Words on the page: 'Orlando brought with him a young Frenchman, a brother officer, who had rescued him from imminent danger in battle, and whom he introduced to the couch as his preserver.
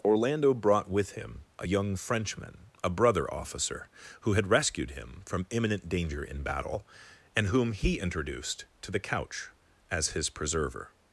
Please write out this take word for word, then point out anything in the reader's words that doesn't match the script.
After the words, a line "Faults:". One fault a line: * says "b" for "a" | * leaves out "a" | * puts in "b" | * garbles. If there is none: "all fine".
'Orlando brought with him a young Frenchman, a brother officer, who had rescued him from imminent danger in battle, and whom he introduced to the couch as his preserver.
Faults:
all fine